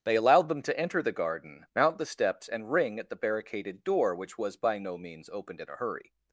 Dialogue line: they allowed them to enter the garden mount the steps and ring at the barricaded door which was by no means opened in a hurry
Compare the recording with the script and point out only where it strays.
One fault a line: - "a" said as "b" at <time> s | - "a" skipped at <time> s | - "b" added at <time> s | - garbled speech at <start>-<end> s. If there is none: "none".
none